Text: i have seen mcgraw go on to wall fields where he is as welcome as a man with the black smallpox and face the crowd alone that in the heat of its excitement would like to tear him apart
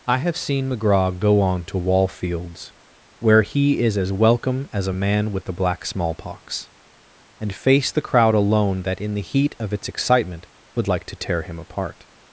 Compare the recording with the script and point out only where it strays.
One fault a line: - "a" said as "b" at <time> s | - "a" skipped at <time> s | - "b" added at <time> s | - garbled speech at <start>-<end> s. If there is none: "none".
none